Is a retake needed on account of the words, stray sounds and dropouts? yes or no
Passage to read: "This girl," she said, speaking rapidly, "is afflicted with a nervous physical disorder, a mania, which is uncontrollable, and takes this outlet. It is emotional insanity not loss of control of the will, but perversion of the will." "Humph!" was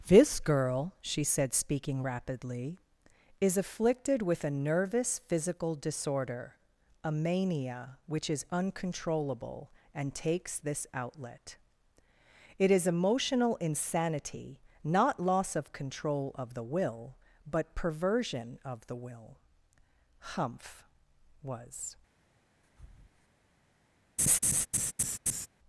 yes